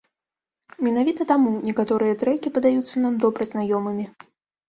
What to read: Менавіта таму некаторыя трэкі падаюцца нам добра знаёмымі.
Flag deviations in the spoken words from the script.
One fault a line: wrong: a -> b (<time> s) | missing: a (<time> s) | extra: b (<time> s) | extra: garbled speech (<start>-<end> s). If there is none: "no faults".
no faults